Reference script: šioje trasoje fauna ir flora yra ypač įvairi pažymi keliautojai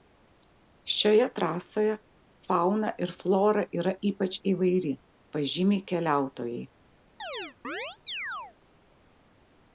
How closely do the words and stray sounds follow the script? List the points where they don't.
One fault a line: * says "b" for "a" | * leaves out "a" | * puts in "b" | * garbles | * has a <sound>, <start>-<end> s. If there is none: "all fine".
* has a chirp, 7.2-8.6 s